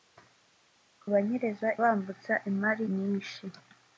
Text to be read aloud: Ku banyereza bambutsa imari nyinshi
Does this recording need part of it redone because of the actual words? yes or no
no